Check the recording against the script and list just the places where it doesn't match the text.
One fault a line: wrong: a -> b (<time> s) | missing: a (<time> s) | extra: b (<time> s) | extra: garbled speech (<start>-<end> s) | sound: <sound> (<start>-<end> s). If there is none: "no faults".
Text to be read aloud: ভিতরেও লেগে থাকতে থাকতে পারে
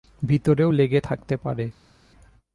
missing: থাকতে (1.3 s)